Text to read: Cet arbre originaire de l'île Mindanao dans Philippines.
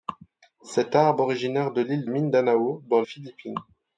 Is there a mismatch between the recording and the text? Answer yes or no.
no